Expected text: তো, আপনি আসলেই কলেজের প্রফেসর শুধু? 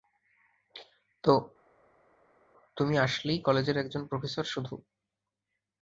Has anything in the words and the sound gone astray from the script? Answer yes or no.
yes